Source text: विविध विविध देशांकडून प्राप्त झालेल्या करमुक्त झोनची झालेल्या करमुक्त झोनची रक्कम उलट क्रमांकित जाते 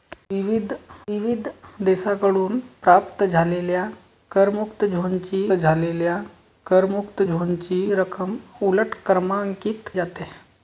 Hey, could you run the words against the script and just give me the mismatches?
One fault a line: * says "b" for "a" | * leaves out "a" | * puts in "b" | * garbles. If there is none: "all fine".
all fine